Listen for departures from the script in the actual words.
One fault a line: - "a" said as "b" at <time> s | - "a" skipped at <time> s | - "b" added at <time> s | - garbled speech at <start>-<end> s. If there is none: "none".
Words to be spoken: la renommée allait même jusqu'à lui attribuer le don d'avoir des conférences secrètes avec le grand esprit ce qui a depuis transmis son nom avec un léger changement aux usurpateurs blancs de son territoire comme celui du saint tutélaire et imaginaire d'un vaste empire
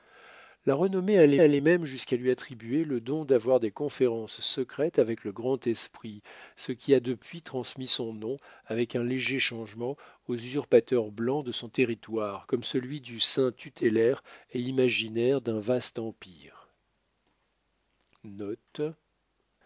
- "allait" added at 1.4 s